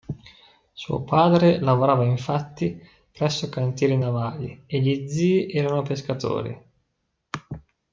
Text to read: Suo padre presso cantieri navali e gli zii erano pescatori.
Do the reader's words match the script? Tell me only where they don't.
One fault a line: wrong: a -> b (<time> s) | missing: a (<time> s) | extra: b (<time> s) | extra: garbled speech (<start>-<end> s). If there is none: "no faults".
extra: lavorava infatti (1.6 s)